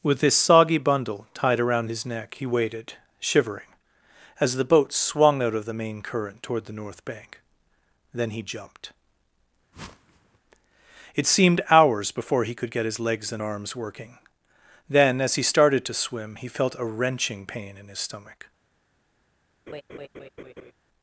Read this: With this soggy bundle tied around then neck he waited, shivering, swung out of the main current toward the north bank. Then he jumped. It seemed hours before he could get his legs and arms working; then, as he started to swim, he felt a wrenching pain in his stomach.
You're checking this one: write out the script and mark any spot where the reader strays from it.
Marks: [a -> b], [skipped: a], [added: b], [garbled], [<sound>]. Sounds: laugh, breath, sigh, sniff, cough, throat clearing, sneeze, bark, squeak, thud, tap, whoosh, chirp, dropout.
With this soggy bundle tied around [then -> his] neck he waited, shivering, [added: as the boat] swung out of the main current toward the north bank. Then he jumped. [whoosh] It seemed hours before he could get his legs and arms working; then, as he started to swim, he felt a wrenching pain in his stomach. [laugh]